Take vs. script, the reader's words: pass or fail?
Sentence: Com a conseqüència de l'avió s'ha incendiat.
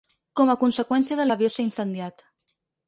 pass